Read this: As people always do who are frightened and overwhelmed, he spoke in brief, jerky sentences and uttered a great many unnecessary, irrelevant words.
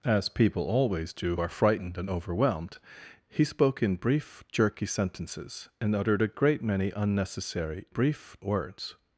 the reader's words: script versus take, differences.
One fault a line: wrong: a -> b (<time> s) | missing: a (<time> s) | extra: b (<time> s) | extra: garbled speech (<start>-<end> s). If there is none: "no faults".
missing: who (1.4 s)
wrong: irrelevant -> brief (7.9 s)